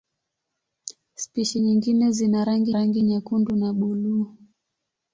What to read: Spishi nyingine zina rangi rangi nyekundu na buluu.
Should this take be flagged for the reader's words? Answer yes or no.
no